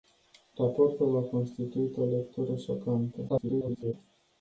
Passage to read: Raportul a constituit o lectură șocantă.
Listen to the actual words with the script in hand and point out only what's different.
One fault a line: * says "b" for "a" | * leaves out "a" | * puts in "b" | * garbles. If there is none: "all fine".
* garbles